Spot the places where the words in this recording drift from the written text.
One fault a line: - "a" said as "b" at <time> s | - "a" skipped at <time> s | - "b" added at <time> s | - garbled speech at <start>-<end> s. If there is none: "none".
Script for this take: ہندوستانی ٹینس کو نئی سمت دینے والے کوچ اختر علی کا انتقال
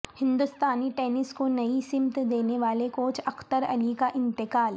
none